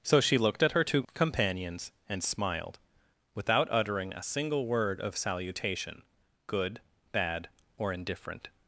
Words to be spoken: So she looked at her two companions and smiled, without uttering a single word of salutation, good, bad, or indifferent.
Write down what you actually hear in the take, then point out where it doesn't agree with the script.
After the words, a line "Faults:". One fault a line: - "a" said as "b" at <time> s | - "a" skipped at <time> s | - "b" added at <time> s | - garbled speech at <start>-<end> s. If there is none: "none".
So she looked at her two companions and smiled, without uttering a single word of salutation, good, bad, or indifferent.
Faults:
none